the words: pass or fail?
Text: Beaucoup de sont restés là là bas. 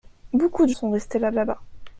pass